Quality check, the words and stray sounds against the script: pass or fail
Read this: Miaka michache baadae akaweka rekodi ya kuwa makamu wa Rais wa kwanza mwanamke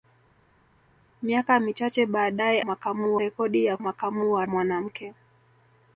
fail